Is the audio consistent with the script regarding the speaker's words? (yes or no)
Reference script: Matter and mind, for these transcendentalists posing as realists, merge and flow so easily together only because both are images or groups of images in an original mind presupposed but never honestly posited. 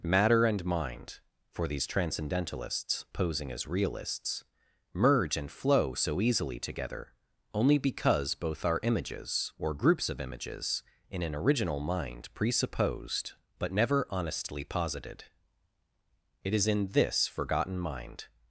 no